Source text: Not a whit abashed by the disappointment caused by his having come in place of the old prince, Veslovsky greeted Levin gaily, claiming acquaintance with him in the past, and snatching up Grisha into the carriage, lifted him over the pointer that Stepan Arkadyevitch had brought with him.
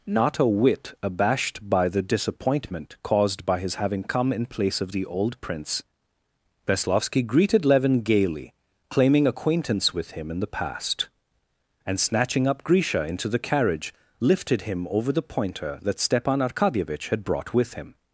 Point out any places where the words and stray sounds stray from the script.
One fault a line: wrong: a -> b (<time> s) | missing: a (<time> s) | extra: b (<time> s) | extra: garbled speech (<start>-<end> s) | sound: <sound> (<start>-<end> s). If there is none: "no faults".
no faults